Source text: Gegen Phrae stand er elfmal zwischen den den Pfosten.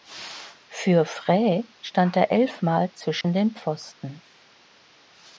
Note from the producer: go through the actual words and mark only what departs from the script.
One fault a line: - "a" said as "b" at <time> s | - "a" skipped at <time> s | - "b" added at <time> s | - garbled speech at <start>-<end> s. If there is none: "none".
- "Gegen" said as "Für" at 0.0 s
- "den" skipped at 3.5 s